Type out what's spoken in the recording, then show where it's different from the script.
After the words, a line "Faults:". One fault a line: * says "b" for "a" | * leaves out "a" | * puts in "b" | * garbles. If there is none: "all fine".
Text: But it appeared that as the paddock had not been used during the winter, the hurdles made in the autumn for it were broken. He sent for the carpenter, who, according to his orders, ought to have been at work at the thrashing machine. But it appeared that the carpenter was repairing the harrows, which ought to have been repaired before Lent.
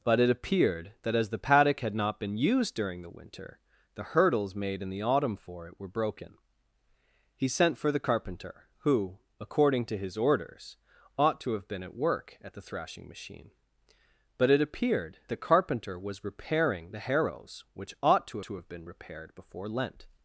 But it appeared that as the paddock had not been used during the winter, the hurdles made in the autumn for it were broken. He sent for the carpenter, who, according to his orders, ought to have been at work at the thrashing machine. But it appeared the carpenter was repairing the harrows, which ought to to have been repaired before Lent.
Faults:
* leaves out "that"
* puts in "to"